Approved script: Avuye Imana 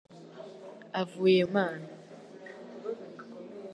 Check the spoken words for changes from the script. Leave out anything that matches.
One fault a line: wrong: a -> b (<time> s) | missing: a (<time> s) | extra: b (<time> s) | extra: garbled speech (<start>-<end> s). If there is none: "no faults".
no faults